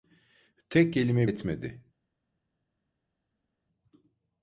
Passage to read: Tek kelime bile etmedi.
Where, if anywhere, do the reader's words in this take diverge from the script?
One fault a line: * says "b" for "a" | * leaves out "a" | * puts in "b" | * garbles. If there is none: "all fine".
* leaves out "bile"